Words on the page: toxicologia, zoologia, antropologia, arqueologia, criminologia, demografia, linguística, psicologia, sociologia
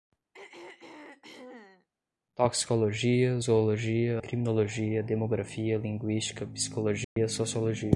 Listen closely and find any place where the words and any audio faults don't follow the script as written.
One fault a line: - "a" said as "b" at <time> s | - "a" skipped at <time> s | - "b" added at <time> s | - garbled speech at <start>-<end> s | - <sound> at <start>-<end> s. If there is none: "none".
- throat clearing at 0.3-1.9 s
- "antropologia arqueologia" skipped at 4.2 s
- dropout at 7.0-7.2 s